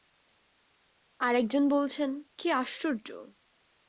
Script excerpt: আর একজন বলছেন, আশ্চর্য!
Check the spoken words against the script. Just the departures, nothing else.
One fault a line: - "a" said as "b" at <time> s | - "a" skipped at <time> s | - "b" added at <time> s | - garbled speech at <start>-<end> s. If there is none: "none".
- "কী" added at 2.4 s